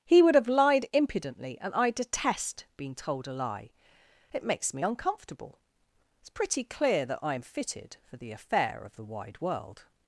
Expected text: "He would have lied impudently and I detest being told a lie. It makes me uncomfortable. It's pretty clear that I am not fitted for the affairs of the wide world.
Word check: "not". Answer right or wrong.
wrong